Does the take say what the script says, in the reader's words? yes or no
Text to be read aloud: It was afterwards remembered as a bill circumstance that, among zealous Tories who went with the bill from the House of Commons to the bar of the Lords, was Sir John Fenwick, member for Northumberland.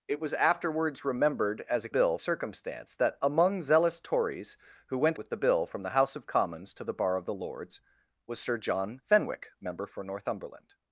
yes